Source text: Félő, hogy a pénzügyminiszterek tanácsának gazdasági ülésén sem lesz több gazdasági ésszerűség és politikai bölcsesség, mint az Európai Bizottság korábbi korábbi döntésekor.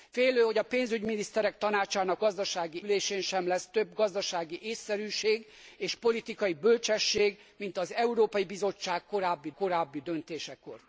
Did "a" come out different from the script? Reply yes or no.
no